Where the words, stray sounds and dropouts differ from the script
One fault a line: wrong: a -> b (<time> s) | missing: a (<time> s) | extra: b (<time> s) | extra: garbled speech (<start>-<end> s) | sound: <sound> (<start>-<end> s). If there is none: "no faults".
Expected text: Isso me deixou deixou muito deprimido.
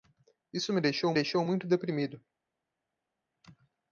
no faults